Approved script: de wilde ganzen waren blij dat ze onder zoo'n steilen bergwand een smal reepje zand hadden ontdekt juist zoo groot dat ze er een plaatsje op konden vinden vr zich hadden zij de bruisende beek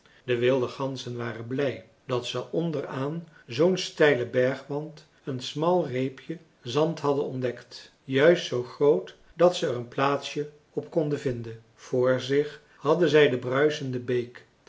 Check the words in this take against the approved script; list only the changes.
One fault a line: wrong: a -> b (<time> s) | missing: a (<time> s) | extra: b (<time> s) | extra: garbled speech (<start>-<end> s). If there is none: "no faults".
extra: aan (2.9 s)